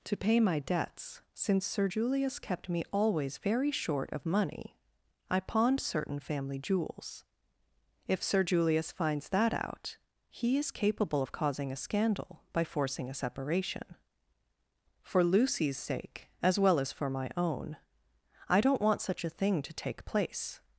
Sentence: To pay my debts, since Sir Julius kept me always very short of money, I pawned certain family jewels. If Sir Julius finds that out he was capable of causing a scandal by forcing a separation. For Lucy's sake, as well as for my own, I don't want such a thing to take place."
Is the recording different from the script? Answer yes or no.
yes